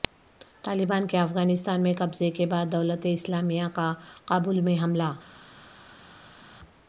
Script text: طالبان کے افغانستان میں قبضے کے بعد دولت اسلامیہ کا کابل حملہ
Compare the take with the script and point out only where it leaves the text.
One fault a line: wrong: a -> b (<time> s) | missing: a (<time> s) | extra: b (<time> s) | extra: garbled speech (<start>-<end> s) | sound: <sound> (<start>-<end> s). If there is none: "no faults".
extra: میں (4.6 s)